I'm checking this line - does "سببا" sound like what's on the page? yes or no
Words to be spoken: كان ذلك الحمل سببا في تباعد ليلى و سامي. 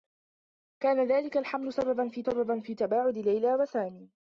yes